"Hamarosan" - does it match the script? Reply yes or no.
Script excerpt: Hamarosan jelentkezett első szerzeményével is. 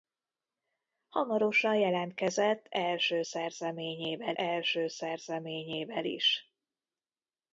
yes